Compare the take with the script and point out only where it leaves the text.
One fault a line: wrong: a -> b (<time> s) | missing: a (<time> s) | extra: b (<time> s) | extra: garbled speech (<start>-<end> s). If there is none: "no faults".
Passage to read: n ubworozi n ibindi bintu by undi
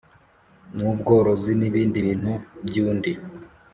no faults